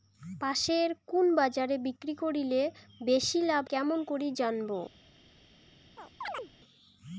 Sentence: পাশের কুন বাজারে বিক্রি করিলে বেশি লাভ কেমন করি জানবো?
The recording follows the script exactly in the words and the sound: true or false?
false